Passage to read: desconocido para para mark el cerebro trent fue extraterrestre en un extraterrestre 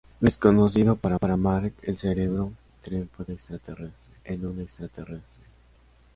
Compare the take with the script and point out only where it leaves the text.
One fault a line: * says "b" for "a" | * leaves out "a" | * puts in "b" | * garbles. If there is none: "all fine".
all fine